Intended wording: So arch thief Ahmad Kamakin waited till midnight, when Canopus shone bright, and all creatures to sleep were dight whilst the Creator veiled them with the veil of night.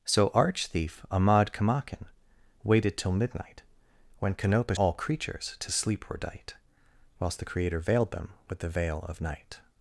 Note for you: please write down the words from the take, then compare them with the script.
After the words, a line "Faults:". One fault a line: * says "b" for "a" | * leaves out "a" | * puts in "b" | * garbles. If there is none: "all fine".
So arch thief Ahmad Kamakin waited till midnight, when Canopus all creatures to sleep were dight whilst the Creator veiled them with the veil of night.
Faults:
* leaves out "shone bright and"